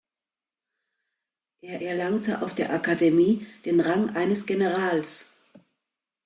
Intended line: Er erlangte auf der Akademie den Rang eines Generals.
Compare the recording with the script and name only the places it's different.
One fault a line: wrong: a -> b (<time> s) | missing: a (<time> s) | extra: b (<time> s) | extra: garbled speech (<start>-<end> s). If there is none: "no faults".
no faults